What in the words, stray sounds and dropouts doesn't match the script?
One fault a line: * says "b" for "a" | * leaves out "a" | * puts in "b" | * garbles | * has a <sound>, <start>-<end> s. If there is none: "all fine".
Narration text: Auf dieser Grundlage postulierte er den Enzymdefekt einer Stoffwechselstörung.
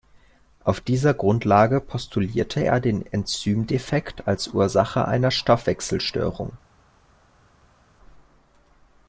* puts in "als Ursache"